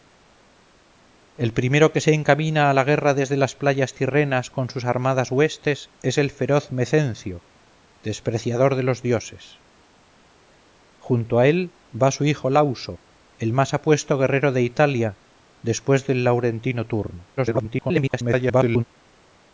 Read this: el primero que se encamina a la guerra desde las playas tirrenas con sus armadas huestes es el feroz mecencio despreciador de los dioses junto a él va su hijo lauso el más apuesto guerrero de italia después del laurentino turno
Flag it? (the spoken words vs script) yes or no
yes